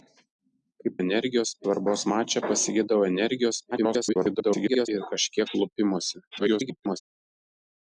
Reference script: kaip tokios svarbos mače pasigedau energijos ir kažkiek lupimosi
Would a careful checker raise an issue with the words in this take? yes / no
yes